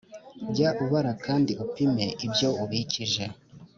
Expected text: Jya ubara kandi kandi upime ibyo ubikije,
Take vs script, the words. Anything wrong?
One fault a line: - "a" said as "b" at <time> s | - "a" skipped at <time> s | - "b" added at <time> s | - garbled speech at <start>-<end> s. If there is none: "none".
- "kandi" skipped at 1.5 s